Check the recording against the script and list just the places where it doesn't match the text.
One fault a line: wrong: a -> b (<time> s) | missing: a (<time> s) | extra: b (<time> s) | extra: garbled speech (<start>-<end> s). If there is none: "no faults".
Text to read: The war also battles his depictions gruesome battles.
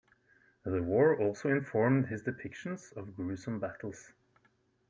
wrong: battles -> informed (1.5 s)
extra: of (3.0 s)